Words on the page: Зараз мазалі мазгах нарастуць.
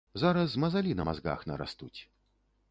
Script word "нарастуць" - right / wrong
right